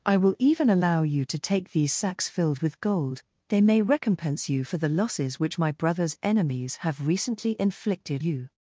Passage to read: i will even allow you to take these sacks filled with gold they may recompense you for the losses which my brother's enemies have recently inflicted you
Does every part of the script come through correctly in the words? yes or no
yes